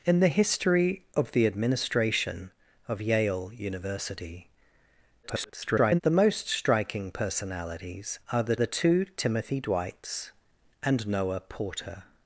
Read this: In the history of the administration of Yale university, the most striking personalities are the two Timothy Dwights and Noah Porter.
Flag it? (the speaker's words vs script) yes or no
yes